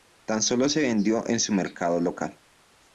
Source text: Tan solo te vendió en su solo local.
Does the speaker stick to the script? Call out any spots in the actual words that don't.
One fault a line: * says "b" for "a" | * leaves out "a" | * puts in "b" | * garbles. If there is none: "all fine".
* says "se" for "te"
* says "mercado" for "solo"